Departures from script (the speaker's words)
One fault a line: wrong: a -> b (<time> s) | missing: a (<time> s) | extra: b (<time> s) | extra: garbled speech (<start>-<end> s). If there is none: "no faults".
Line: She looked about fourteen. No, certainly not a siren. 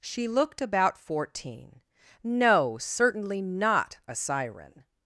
no faults